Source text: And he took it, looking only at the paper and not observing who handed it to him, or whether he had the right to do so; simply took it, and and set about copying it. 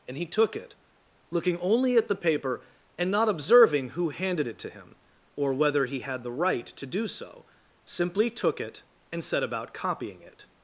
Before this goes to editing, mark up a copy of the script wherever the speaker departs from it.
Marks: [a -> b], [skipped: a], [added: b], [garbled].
And he took it, looking only at the paper and not observing who handed it to him, or whether he had the right to do so; simply took it, and [skipped: and] set about copying it.